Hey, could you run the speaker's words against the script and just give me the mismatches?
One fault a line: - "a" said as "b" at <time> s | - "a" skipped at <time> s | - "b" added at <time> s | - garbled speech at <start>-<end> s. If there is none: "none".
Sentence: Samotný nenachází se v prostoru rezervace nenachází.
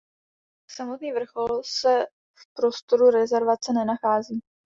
- "nenachází" said as "vrchol" at 1.1 s